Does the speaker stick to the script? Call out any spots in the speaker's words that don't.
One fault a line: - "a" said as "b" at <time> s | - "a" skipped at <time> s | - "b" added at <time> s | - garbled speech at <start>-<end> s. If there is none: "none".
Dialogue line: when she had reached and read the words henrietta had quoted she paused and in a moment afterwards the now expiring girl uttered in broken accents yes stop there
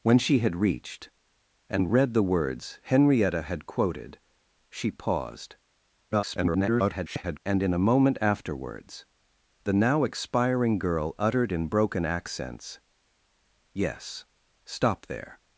- garbled speech at 6.1-7.4 s